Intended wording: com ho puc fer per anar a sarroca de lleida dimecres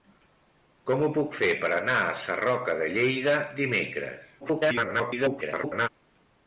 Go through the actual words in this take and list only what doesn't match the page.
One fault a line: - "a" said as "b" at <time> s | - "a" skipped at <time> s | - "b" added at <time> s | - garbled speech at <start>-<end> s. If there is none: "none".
- garbled speech at 4.4-5.9 s